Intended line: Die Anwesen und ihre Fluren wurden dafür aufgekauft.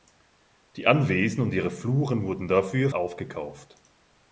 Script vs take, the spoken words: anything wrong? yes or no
no